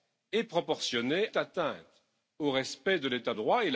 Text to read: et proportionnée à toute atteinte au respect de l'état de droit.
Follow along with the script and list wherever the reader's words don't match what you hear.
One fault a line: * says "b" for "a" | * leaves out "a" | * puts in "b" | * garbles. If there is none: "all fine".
* leaves out "à toute"
* leaves out "de"